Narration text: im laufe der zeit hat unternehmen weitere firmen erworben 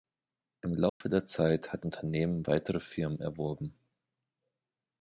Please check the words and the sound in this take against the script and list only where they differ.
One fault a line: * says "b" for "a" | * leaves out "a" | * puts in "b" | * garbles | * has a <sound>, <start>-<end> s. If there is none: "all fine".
* has a dropout, 0.9-1.0 s